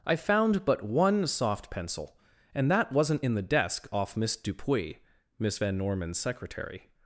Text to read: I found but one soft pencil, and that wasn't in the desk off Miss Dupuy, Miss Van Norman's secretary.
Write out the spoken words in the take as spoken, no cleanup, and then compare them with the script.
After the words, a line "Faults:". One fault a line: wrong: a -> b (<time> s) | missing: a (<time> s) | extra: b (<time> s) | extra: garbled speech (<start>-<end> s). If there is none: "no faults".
I found but one soft pencil, and that wasn't in the desk off Miss Dupuy, Miss Van Norman's secretary.
Faults:
no faults